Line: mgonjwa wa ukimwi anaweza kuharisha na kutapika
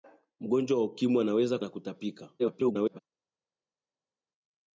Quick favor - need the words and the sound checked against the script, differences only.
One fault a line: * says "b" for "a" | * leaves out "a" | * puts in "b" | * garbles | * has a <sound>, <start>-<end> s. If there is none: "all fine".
* leaves out "kuharisha"
* garbles